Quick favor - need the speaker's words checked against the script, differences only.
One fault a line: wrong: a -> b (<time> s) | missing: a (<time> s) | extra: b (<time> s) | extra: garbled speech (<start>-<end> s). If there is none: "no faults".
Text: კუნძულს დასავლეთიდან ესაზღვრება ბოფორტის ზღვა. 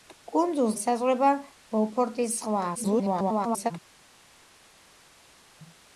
missing: დასავლეთიდან (0.8 s)
extra: garbled speech (2.7-3.7 s)